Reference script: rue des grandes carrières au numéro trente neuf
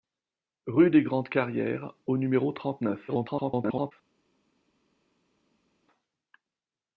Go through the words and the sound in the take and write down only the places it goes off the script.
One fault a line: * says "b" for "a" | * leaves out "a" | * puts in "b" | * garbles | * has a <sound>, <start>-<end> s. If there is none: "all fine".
* garbles